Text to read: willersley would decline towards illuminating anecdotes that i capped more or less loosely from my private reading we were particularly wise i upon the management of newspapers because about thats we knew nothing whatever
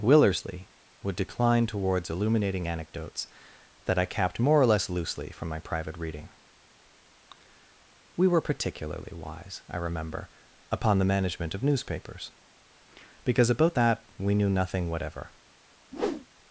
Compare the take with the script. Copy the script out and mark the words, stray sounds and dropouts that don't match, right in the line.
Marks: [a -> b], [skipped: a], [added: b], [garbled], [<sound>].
willersley would decline towards illuminating anecdotes that i capped more or less loosely from my private reading we were particularly wise i [added: remember] upon the management of newspapers because about [thats -> that] we knew nothing whatever [whoosh]